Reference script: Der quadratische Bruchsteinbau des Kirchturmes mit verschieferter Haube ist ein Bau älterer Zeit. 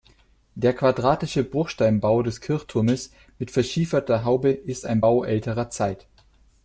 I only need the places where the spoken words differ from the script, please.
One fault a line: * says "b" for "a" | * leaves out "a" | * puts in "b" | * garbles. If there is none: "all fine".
all fine